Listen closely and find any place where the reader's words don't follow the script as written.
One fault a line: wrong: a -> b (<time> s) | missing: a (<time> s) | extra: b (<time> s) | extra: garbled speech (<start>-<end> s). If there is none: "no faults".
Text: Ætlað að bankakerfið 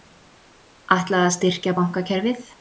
extra: styrkja (1.4 s)